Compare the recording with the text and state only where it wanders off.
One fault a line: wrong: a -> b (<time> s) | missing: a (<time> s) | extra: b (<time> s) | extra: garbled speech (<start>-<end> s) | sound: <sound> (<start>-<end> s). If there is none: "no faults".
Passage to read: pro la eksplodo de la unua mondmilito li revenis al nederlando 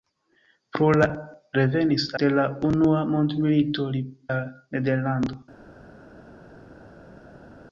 wrong: eksplodo -> revenis (1.6 s)
missing: revenis (4.1 s)